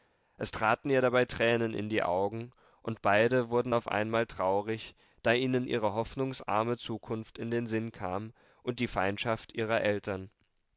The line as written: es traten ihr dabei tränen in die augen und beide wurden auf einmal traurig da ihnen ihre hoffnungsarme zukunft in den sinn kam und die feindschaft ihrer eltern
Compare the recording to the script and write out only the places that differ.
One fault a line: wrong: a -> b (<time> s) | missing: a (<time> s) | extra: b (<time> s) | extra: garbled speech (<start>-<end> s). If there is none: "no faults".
no faults